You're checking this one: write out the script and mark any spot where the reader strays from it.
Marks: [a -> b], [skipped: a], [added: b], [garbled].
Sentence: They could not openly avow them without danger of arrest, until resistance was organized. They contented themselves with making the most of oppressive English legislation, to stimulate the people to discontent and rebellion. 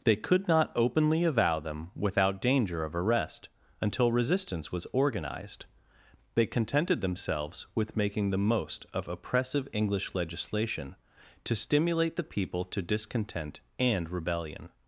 They could not openly avow them without danger of arrest, until resistance was organized. They contented themselves with making the most of oppressive English legislation, to stimulate the people to discontent and rebellion.